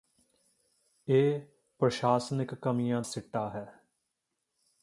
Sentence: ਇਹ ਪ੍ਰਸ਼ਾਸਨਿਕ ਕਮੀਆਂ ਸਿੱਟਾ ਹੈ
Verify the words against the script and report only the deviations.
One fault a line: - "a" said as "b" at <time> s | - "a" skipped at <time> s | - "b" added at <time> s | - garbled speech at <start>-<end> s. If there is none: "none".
none